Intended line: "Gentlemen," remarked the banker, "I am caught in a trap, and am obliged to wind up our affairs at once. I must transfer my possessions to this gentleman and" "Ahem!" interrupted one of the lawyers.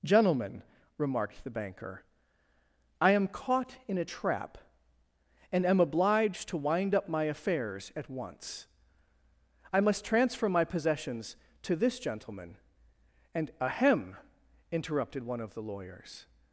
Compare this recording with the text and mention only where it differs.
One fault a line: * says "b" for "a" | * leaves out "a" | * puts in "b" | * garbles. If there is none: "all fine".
* says "my" for "our"